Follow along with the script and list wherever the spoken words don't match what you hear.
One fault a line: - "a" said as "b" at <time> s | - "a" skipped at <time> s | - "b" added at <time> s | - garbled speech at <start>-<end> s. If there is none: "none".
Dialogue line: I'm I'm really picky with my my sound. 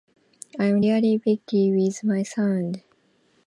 - "I'm" skipped at 0.8 s
- "my" skipped at 2.2 s